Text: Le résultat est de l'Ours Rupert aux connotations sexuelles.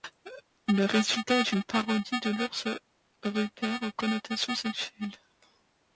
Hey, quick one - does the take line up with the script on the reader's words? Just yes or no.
no